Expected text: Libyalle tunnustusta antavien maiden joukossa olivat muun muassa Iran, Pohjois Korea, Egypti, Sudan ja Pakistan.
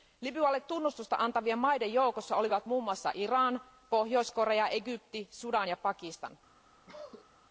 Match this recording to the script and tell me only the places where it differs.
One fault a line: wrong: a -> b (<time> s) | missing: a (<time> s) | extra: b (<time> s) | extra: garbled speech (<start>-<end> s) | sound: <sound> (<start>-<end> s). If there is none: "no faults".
sound: cough (6.9-7.3 s)